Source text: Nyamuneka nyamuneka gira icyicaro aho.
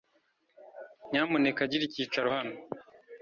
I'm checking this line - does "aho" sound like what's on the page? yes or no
no